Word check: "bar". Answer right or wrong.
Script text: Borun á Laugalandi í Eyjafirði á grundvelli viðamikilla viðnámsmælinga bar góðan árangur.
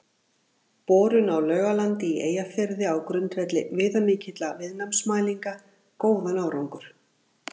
wrong